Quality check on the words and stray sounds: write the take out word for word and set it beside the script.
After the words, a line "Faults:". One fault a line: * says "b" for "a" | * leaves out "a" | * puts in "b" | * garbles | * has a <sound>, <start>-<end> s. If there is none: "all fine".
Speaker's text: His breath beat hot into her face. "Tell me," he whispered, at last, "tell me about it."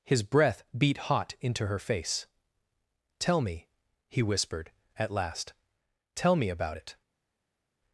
His breath beat hot into her face. "Tell me," he whispered, at last, "tell me about it."
Faults:
all fine